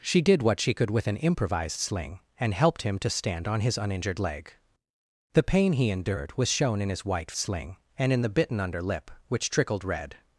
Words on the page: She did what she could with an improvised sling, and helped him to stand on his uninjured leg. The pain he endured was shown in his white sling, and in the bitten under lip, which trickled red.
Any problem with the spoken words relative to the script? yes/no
no